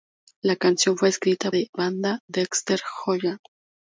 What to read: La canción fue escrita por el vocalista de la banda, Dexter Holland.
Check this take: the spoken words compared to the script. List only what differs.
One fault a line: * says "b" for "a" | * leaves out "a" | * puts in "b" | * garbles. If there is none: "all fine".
* leaves out "por el vocalista"